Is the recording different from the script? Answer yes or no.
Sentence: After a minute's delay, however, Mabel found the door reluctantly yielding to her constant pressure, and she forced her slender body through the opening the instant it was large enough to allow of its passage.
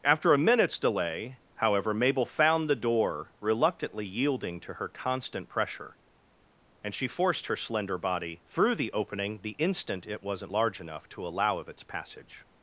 yes